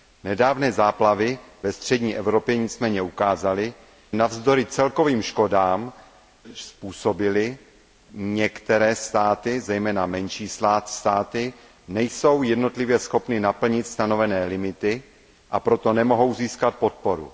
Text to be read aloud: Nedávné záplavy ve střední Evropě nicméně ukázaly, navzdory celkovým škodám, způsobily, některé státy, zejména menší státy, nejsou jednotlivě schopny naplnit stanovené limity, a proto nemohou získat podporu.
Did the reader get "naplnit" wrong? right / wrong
right